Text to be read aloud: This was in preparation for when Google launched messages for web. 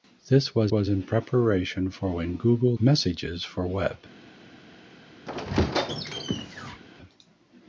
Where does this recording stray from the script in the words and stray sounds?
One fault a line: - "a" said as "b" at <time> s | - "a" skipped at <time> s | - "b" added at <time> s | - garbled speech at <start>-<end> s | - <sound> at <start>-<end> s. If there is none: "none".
- "was" added at 0.7 s
- "launched" skipped at 2.7 s
- squeak at 5.3-6.8 s